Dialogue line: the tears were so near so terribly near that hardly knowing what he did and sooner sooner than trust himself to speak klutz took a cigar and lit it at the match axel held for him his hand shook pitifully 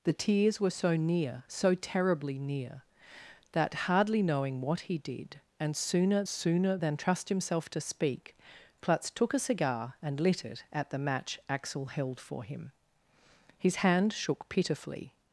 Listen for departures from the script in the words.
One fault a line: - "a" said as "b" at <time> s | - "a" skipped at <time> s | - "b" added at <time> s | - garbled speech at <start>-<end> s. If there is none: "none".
none